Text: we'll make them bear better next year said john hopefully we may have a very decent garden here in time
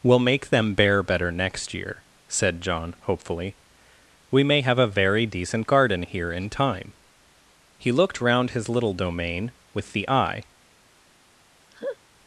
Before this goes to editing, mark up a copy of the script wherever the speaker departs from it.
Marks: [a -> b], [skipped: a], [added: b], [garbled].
we'll make them bear better next year said john hopefully we may have a very decent garden here in time [added: he looked round his little domain with the eye]